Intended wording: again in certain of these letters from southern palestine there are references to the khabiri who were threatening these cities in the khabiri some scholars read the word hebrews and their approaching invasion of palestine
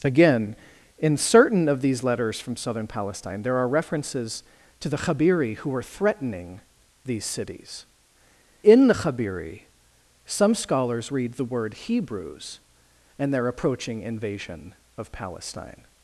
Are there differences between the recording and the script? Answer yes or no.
no